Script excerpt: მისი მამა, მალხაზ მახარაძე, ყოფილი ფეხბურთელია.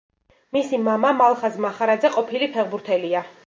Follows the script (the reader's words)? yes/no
yes